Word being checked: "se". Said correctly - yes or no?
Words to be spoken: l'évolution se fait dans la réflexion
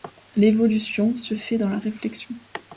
yes